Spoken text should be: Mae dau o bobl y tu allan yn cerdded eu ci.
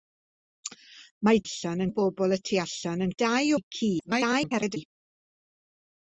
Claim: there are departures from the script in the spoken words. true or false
true